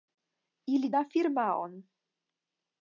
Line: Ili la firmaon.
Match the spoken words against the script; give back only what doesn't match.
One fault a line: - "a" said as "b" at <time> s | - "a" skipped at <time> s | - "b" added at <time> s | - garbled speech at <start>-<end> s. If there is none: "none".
none